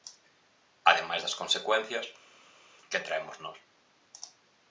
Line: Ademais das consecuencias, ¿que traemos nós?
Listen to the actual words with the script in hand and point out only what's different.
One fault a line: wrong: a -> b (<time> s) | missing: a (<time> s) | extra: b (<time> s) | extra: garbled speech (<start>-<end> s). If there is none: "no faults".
no faults